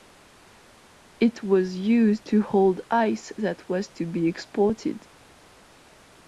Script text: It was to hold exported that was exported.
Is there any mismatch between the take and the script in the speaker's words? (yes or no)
yes